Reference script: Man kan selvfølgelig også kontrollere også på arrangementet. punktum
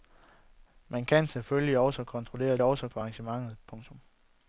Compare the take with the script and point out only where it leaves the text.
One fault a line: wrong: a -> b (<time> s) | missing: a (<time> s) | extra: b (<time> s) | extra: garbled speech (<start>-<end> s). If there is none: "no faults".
no faults